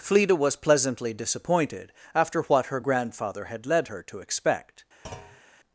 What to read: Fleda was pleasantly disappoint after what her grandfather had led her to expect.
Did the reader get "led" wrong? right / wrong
right